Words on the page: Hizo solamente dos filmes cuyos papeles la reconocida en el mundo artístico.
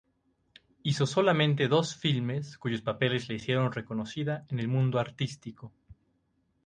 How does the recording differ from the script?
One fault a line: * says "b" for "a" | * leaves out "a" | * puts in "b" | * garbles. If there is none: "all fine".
* puts in "hicieron"